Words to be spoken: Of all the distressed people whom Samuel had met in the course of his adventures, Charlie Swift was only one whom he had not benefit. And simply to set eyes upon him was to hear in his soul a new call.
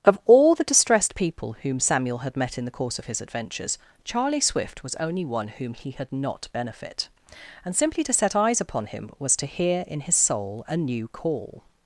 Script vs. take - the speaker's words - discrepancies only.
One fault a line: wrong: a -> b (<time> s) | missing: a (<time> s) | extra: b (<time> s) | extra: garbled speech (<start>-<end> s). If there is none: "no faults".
no faults